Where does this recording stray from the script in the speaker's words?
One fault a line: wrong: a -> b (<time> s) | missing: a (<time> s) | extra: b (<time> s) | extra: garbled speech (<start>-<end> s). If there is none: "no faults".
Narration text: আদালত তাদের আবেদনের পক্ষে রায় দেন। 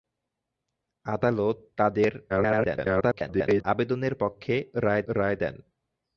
extra: garbled speech (2.3-3.6 s)
extra: রায় (5.1 s)